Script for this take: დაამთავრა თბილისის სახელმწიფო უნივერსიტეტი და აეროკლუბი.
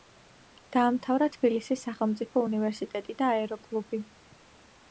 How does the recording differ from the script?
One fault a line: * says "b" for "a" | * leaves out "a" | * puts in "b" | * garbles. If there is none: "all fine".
all fine